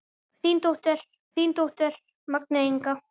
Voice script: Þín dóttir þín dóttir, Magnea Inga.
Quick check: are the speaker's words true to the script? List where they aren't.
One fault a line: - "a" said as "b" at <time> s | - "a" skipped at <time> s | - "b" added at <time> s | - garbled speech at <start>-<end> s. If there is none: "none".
none